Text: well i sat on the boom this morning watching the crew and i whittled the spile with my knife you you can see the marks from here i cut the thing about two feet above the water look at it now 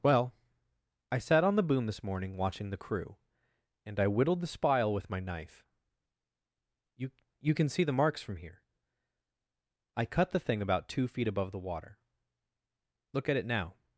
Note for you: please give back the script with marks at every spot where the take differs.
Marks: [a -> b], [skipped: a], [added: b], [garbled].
well i sat on the boom this morning watching the crew and i whittled the spile with my knife you you can see the marks from here i cut the thing about two feet above the water look at it now